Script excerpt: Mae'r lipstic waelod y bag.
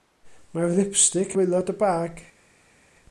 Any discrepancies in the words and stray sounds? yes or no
no